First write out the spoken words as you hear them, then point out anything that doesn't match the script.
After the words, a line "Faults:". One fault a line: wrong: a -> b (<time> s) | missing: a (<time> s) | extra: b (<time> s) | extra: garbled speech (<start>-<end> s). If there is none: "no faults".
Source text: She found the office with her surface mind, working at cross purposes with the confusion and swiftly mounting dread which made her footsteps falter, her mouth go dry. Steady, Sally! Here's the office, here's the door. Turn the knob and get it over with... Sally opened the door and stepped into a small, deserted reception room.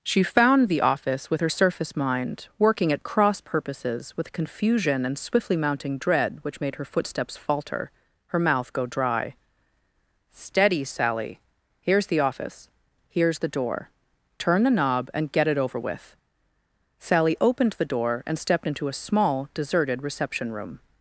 She found the office with her surface mind, working at cross purposes with confusion and swiftly mounting dread which made her footsteps falter, her mouth go dry. Steady, Sally! Here's the office, here's the door. Turn the knob and get it over with... Sally opened the door and stepped into a small, deserted reception room.
Faults:
missing: the (4.3 s)